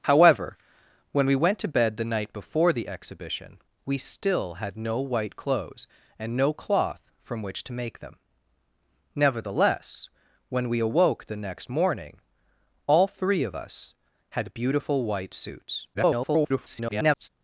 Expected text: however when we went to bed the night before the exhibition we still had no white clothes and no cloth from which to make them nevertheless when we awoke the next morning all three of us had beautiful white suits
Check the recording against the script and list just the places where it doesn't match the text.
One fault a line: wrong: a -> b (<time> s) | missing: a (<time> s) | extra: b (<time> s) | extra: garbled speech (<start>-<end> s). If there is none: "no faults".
extra: garbled speech (15.9-17.3 s)